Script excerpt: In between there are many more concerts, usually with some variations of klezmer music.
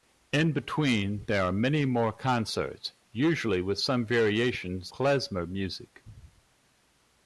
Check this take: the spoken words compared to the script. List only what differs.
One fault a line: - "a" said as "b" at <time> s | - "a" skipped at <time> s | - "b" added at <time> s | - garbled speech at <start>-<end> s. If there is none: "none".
- "of" skipped at 4.9 s